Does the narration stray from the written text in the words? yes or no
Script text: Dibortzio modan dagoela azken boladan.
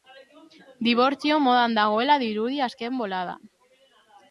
yes